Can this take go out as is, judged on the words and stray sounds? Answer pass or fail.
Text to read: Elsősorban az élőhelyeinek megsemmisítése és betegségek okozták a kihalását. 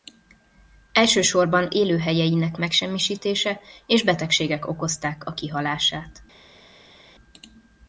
fail